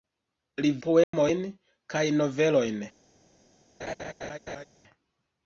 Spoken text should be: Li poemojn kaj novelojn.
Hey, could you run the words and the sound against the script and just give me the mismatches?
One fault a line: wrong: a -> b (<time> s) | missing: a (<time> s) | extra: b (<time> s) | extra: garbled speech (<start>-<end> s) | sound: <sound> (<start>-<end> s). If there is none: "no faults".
sound: dropout (1.0-1.1 s)
sound: laugh (3.8-4.6 s)